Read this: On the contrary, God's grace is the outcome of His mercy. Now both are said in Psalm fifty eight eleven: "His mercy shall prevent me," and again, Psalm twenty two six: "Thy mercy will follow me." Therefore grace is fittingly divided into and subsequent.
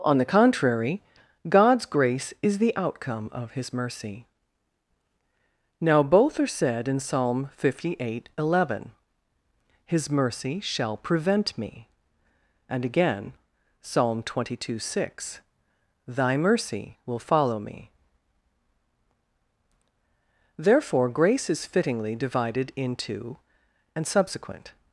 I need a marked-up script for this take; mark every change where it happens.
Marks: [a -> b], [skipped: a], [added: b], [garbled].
On the contrary, God's grace is the outcome of His mercy. Now both are said in Psalm fifty eight eleven: "His mercy shall prevent me," and again, Psalm twenty two six: "Thy mercy will follow me." Therefore grace is fittingly divided into and subsequent.